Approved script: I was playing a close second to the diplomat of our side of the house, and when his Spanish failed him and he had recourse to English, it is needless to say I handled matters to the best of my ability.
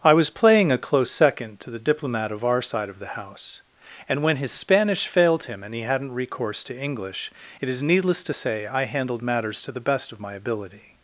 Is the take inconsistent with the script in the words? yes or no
yes